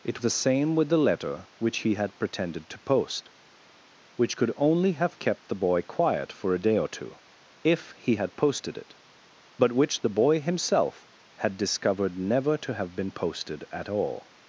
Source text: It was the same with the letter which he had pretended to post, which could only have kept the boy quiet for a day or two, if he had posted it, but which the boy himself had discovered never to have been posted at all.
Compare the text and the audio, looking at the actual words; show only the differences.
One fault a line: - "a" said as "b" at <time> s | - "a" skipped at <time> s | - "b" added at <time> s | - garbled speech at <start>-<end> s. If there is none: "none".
- "was" skipped at 0.2 s